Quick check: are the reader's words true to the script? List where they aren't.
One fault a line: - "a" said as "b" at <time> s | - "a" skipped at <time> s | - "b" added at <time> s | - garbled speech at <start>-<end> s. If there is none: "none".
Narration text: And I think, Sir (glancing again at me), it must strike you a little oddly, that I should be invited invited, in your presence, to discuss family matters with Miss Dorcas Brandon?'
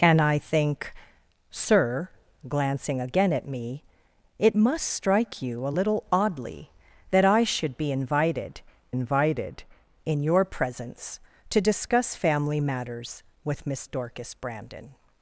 none